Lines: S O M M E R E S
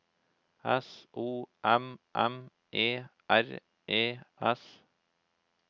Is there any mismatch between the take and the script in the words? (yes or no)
no